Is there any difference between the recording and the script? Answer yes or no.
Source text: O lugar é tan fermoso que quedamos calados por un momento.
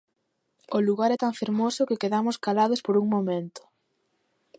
no